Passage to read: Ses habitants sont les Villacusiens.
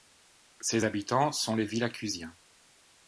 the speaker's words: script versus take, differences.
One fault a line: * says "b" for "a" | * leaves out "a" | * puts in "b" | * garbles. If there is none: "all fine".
all fine